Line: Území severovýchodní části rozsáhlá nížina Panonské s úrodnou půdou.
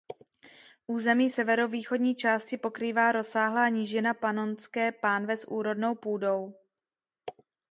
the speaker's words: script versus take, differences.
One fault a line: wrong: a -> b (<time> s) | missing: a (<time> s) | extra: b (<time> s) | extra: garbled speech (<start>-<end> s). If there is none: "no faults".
extra: pokrývá (2.6 s)
extra: pánve (4.9 s)